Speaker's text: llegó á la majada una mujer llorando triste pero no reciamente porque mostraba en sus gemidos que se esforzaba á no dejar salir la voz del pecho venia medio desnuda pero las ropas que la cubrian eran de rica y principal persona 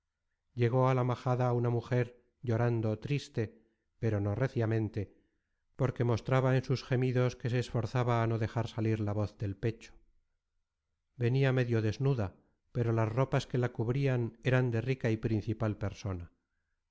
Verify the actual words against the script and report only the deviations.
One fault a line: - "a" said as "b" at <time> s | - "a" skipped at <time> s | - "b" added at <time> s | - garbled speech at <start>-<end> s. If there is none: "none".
none